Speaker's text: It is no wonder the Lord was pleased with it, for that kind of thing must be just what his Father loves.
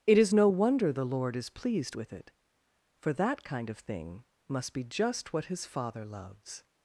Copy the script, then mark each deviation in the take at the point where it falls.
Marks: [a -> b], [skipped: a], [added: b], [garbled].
It is no wonder the Lord [was -> is] pleased with it, for that kind of thing must be just what his Father loves.